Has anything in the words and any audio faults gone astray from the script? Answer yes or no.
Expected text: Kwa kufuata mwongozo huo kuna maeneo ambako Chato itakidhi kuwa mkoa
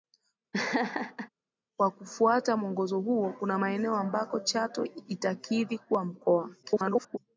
yes